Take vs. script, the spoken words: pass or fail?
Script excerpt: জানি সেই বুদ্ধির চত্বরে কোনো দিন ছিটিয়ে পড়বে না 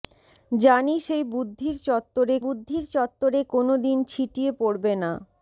fail